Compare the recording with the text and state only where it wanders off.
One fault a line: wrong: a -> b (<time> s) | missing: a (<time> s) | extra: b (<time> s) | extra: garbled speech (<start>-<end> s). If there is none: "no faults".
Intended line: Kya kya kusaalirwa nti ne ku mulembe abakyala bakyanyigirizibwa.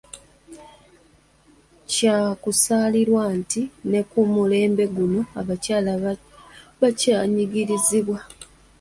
missing: kya (2.2 s)
extra: guno (5.0 s)